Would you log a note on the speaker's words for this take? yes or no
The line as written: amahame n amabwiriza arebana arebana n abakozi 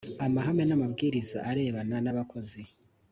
yes